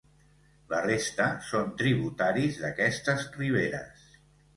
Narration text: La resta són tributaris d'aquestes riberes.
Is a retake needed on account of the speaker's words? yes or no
no